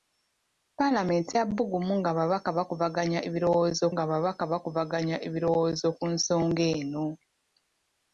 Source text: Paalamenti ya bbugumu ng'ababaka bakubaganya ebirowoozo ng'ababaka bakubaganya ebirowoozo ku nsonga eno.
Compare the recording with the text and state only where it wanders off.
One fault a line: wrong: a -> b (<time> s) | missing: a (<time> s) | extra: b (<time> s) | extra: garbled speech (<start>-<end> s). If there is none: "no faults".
no faults